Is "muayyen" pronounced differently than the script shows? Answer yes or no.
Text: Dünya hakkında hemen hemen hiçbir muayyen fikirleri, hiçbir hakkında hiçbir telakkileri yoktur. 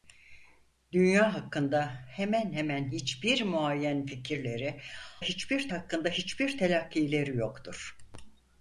no